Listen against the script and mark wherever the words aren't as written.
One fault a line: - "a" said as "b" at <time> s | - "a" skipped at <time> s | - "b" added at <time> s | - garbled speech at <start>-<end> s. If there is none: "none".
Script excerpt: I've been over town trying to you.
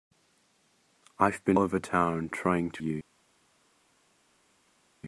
none